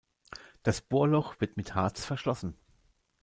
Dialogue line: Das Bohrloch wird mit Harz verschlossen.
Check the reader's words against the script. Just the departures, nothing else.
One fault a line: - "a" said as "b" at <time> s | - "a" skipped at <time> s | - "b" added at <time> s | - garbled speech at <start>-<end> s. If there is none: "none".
none